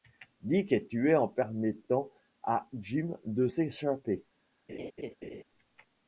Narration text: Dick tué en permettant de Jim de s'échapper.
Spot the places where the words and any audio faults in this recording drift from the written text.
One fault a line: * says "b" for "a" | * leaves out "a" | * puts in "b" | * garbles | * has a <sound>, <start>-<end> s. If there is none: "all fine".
* puts in "est"
* says "à" for "de"
* has a laugh, 4.7-5.4 s